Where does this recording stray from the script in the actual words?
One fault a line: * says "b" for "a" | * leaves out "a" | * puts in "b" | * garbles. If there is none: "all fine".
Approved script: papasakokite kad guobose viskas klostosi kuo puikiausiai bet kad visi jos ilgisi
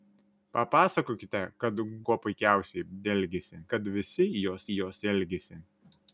* leaves out "guobose viskas klostosi"
* says "ilgisi" for "bet"
* puts in "jos"